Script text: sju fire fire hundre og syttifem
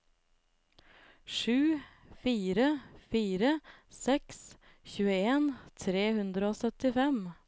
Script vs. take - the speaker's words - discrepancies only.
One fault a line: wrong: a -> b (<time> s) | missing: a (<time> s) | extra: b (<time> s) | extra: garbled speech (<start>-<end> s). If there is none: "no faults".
extra: seks tjueen tre (3.9 s)